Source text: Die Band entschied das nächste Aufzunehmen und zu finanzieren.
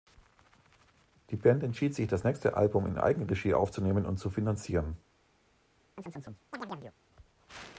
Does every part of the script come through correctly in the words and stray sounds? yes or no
no